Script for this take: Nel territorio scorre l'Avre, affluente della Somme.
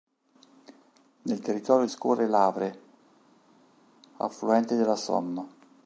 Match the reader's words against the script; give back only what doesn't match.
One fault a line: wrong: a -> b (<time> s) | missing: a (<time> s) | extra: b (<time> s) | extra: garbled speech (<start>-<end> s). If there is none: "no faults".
no faults